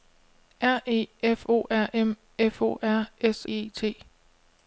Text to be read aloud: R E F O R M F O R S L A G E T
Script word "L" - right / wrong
wrong